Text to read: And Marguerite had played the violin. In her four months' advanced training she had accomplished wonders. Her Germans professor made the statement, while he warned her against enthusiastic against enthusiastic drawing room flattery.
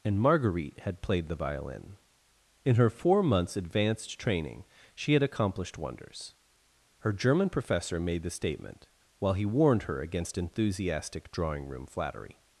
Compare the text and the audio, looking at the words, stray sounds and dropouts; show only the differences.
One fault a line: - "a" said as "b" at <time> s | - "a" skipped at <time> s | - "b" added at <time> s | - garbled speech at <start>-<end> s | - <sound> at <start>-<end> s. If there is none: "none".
- "Germans" said as "German" at 7.1 s
- "against enthusiastic" skipped at 11.3 s